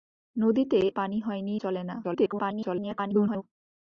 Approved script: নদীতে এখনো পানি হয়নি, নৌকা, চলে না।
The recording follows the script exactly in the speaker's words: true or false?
false